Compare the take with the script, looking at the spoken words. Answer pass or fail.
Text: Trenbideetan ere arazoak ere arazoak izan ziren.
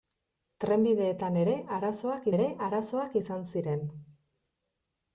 pass